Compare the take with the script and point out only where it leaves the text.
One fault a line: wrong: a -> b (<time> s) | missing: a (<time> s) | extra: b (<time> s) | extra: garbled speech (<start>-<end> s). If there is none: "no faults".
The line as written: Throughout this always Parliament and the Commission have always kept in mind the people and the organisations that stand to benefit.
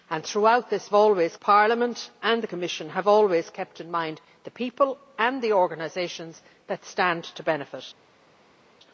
no faults